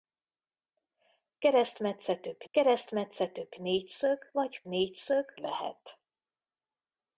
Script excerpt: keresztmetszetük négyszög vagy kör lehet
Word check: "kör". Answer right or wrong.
wrong